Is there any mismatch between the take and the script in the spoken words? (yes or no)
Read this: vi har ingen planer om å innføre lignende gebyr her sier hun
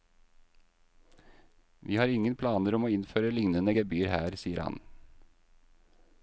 yes